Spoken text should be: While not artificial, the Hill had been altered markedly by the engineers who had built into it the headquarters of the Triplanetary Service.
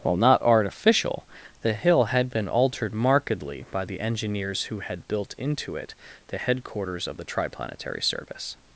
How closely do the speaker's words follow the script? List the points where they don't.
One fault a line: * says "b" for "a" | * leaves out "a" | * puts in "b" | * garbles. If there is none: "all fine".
all fine